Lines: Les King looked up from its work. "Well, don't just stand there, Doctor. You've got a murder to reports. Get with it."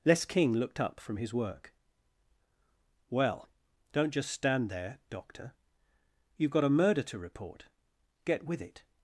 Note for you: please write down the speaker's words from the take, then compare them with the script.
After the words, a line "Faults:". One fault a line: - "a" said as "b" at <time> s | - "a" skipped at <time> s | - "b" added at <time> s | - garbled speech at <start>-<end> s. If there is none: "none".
Les King looked up from his work. "Well, don't just stand there, Doctor. You've got a murder to report. Get with it."
Faults:
- "its" said as "his" at 1.2 s
- "reports" said as "report" at 7.2 s